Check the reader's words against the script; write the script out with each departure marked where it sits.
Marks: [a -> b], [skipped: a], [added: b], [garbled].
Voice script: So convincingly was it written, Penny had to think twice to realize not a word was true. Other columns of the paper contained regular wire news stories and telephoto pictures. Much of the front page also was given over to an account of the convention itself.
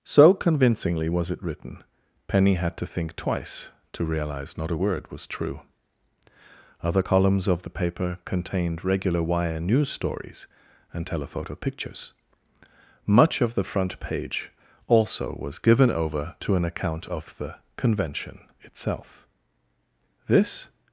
So convincingly was it written, Penny had to think twice to realize not a word was true. Other columns of the paper contained regular wire news stories and telephoto pictures. Much of the front page also was given over to an account of the convention itself. [added: This]